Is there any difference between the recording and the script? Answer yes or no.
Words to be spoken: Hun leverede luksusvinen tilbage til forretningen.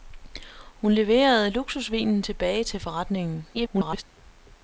yes